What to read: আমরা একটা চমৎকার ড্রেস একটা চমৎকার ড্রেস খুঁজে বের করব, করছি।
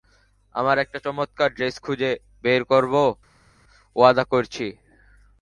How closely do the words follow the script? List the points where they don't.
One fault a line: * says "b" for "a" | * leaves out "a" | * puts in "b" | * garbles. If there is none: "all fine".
* leaves out "একটা চমৎকার ড্রেস"
* puts in "ওয়াদা"